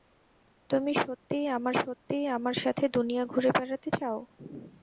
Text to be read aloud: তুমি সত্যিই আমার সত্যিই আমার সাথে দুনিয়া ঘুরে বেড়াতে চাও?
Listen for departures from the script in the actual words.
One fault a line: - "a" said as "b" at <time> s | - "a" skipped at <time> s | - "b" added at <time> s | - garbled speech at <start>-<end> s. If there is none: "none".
none